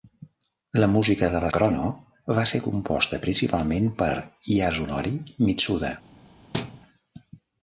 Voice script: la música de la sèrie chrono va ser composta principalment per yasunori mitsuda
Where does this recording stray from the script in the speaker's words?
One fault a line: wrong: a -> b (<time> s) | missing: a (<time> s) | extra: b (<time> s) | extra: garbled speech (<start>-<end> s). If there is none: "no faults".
missing: sèrie (1.5 s)